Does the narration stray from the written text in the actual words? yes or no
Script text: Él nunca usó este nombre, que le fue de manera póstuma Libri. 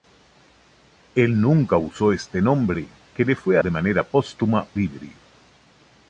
no